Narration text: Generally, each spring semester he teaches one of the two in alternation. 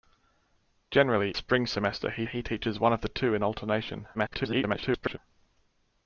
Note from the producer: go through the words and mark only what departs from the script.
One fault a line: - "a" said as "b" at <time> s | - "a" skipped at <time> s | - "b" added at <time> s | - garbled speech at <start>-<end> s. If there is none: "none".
- "each" skipped at 1.4 s
- "he" added at 2.3 s
- garbled speech at 4.1-5.2 s